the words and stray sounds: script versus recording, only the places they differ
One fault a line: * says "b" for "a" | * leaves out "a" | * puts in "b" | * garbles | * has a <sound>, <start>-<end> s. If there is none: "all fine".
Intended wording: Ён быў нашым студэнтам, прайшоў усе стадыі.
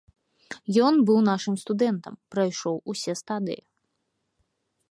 all fine